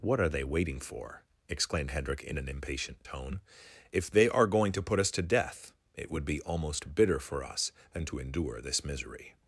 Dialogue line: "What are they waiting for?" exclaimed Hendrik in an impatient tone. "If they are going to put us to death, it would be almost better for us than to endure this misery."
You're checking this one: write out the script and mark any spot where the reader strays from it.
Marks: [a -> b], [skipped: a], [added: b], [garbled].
"What are they waiting for?" exclaimed Hendrik in an impatient tone. "If they are going to put us to death, it would be almost [better -> bitter] for us than to endure this misery."